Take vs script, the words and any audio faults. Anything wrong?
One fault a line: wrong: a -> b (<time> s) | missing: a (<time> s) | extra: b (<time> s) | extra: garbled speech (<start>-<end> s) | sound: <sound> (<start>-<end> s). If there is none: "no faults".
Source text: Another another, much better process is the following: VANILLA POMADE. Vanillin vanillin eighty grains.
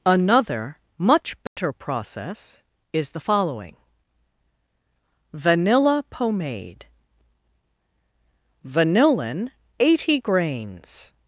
missing: another (0.8 s)
sound: dropout (1.5-1.6 s)
missing: vanillin (9.5 s)